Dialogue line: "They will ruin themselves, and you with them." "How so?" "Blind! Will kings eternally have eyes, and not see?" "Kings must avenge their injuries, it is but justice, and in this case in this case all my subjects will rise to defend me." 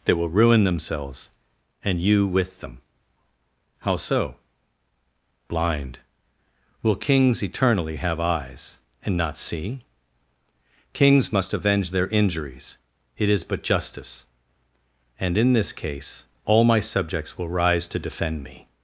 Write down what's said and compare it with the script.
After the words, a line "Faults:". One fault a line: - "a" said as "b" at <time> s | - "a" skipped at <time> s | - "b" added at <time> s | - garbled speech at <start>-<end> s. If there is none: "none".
"They will ruin themselves, and you with them." "How so?" "Blind! Will kings eternally have eyes, and not see?" "Kings must avenge their injuries, it is but justice, and in this case all my subjects will rise to defend me."
Faults:
- "in this case" skipped at 16.2 s